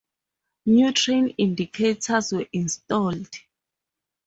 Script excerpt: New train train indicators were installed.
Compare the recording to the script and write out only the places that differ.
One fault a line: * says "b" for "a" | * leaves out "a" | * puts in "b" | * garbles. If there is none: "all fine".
* leaves out "train"